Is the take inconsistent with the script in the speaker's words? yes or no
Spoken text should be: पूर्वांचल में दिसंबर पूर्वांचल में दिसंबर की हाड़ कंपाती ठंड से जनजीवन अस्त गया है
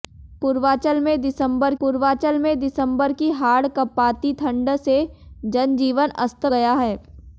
no